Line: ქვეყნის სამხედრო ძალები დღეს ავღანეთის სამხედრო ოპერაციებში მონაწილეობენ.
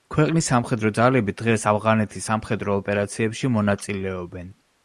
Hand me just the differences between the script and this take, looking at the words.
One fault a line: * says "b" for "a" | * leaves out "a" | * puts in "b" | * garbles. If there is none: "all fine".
all fine